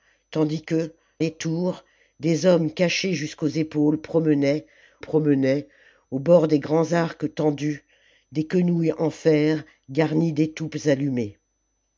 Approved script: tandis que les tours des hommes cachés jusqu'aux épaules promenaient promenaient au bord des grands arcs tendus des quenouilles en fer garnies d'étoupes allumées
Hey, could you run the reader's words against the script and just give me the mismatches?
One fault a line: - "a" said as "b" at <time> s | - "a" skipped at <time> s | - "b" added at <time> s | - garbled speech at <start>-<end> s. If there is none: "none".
none